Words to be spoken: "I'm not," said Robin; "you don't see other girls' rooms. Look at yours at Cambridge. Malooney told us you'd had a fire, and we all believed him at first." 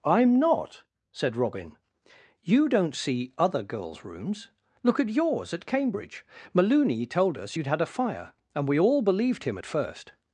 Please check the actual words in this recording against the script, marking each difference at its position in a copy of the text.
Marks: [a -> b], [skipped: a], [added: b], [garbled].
"I'm not," said Robin; "you don't see other girls' rooms. Look at yours at Cambridge. Malooney told us you'd had a fire, and we all believed him at first."